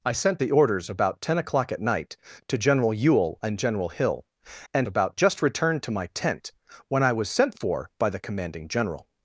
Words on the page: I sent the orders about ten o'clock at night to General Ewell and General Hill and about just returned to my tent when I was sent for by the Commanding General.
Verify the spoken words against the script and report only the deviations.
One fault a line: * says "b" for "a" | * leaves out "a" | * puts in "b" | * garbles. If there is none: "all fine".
all fine